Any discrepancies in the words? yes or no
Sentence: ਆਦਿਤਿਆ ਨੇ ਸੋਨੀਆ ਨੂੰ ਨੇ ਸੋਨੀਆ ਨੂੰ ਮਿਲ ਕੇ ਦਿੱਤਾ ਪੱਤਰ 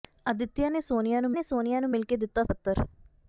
no